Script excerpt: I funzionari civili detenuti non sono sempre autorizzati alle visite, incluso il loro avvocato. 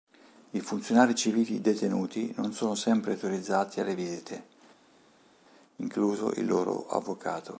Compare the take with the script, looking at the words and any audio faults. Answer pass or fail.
pass